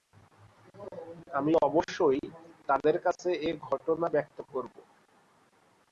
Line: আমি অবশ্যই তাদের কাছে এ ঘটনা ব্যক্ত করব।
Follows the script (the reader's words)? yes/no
yes